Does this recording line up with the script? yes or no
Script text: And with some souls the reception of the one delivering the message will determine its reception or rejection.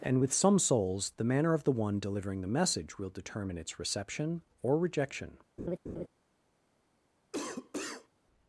no